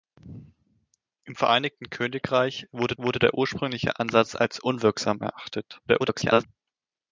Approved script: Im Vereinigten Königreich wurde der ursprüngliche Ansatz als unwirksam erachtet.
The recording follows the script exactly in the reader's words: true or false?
false